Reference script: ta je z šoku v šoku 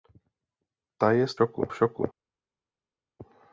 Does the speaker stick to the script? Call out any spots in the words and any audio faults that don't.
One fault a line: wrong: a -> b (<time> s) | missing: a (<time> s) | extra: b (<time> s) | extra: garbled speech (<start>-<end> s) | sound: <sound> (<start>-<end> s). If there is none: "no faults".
no faults